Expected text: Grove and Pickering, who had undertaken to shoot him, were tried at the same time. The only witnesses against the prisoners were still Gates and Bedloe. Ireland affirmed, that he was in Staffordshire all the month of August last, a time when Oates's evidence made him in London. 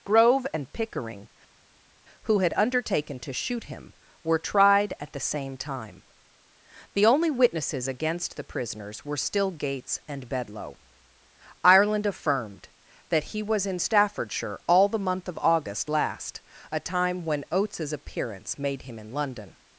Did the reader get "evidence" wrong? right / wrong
wrong